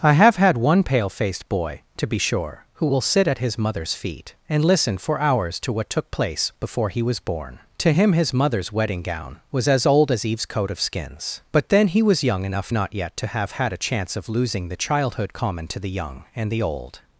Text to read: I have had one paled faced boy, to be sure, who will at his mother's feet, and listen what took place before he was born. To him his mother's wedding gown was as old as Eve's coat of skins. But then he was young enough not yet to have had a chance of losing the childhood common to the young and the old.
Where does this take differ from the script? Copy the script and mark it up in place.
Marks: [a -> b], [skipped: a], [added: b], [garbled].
I have had one [paled -> pale] faced boy, to be sure, who will [added: sit] at his mother's feet, and listen [added: for hours to] what took place before he was born. To him his mother's wedding gown was as old as Eve's coat of skins. But then he was young enough not yet to have had a chance of losing the childhood common to the young and the old.